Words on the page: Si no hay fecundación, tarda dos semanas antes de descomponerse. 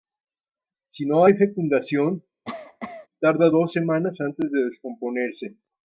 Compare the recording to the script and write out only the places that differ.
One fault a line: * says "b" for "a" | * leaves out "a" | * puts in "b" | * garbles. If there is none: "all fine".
all fine